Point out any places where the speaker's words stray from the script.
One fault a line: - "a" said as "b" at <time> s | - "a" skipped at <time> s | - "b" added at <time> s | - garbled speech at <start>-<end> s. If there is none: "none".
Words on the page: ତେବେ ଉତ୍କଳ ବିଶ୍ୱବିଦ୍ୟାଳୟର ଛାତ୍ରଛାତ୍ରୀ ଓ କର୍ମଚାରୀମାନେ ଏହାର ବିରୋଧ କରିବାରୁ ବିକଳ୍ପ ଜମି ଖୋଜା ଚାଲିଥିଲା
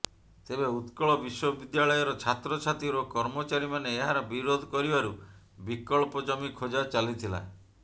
none